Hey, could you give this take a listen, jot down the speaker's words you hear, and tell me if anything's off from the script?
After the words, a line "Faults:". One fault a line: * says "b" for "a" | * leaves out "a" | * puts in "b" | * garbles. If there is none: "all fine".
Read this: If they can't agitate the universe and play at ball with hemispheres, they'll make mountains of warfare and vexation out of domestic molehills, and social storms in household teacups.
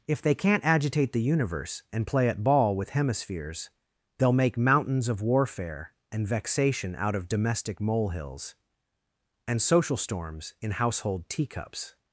If they can't agitate the universe and play at ball with hemispheres, they'll make mountains of warfare and vexation out of domestic molehills, and social storms in household teacups.
Faults:
all fine